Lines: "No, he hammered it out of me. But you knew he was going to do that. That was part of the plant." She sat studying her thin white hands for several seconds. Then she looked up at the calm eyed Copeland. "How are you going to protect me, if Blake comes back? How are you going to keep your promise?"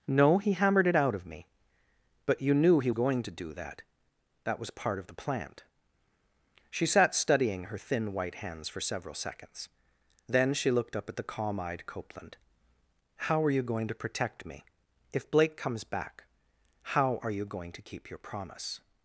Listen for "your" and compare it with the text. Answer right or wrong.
right